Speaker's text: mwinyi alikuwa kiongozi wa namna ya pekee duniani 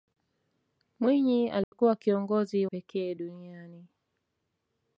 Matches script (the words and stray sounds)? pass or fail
fail